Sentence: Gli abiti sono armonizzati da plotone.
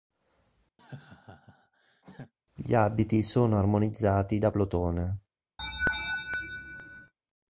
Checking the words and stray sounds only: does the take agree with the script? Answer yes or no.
no